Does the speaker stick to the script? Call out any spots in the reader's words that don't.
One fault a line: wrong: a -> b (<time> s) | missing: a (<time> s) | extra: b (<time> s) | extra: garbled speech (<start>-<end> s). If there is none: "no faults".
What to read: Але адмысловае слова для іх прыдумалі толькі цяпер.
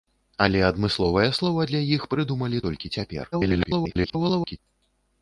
extra: garbled speech (3.3-4.6 s)